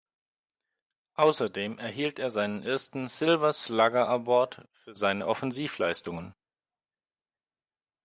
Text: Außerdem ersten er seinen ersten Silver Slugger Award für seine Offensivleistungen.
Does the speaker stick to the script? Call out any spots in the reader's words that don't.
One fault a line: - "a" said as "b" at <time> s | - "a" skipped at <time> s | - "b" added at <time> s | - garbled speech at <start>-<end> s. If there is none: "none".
- "ersten" said as "erhielt" at 1.8 s